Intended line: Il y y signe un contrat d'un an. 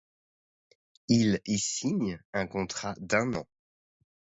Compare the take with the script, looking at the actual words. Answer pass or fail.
fail